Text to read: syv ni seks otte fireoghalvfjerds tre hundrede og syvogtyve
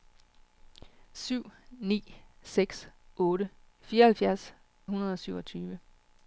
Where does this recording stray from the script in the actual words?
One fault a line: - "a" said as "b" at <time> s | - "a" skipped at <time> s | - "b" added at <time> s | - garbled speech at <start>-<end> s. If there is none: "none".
- "tre" skipped at 4.5 s